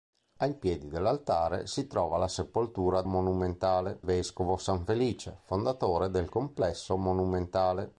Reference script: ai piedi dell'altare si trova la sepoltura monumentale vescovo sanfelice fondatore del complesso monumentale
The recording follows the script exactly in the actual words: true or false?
true